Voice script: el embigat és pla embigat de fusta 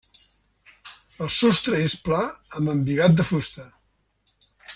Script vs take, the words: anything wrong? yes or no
yes